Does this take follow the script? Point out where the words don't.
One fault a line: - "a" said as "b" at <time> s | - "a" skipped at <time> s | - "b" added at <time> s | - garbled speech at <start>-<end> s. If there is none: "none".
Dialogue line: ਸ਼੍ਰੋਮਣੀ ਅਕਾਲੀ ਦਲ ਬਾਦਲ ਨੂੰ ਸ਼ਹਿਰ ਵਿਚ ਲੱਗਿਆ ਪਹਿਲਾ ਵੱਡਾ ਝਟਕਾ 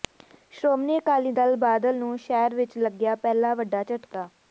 none